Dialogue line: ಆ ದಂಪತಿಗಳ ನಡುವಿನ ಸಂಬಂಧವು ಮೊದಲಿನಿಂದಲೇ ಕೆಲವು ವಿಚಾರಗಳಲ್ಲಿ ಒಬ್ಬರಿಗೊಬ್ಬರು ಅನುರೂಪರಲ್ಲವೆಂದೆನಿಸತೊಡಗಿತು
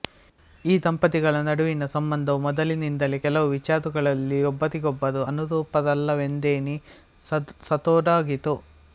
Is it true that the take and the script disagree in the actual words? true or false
true